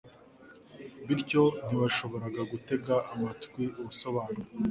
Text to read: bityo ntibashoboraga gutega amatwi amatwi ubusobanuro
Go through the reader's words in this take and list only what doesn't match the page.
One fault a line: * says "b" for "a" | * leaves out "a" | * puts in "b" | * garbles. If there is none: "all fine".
* leaves out "amatwi"